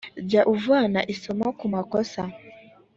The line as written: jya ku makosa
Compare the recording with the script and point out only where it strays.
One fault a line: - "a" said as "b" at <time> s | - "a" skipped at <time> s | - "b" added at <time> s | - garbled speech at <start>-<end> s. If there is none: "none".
- "uvana isomo" added at 0.5 s